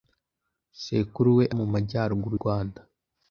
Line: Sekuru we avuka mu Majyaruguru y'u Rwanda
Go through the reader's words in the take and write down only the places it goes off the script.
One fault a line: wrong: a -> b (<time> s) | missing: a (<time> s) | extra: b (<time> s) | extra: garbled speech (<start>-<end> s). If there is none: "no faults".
missing: avuka (1.4 s)
missing: y'u (2.4 s)